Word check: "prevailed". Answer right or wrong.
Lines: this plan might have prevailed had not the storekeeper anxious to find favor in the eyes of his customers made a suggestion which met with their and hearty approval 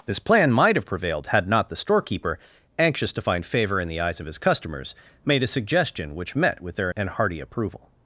right